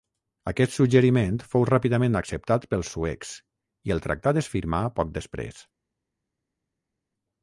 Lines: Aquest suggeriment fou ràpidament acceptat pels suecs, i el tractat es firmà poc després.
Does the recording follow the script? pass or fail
pass